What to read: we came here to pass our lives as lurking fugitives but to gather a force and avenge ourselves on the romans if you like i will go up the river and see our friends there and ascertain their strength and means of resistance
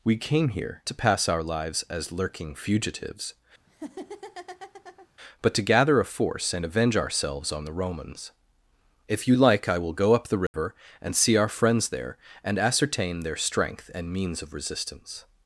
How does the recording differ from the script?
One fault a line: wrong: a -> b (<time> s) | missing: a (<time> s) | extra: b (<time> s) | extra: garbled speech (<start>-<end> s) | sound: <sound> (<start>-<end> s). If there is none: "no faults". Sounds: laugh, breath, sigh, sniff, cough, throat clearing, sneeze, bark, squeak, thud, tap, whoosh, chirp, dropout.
sound: laugh (3.7-5.1 s)
sound: dropout (10.5-10.5 s)